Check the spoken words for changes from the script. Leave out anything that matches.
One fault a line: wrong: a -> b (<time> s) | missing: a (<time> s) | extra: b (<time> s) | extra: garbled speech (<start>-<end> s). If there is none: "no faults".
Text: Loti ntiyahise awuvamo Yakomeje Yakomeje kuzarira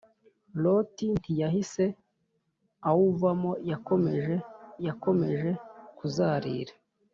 no faults